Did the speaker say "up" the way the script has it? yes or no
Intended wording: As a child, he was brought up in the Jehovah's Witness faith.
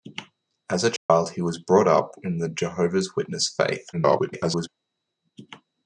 yes